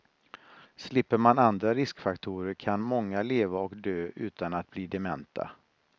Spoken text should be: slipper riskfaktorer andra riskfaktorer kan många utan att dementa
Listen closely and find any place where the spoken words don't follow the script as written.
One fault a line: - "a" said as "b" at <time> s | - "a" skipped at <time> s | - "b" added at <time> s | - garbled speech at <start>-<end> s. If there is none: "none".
- "riskfaktorer" said as "man" at 1.2 s
- "leva och dö" added at 3.2 s
- "bli" added at 4.7 s